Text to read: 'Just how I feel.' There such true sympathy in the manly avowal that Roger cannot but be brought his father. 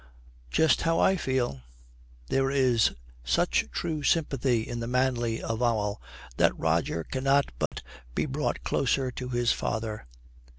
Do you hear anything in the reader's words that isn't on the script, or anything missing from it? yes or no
yes